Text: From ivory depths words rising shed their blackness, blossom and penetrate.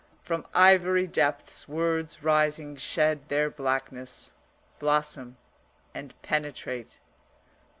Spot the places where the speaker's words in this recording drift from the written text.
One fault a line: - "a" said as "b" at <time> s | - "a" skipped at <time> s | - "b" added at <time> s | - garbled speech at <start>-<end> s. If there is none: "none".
none